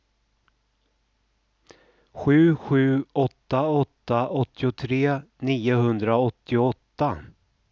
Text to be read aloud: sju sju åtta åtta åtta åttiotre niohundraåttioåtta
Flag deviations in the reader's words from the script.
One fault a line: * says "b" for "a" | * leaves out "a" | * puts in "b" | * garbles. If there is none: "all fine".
* leaves out "åtta"